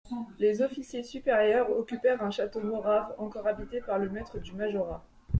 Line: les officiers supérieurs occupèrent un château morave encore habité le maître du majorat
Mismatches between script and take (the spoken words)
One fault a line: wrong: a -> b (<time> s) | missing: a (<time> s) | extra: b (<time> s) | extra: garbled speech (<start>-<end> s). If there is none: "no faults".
extra: par (3.8 s)